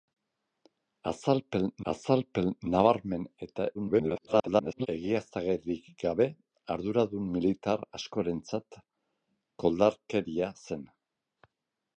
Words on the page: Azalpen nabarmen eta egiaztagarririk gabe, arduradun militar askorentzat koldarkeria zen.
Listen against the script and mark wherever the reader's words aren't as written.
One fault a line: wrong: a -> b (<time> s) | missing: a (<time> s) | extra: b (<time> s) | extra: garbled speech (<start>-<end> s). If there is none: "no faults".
extra: azalpen (1.9 s)
extra: garbled speech (3.7-4.9 s)